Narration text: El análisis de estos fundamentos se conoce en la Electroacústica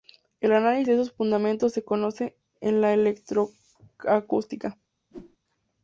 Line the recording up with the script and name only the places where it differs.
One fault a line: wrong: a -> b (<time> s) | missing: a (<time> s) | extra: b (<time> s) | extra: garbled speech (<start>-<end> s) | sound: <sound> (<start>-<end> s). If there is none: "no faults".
sound: whoosh (5.1-5.4 s)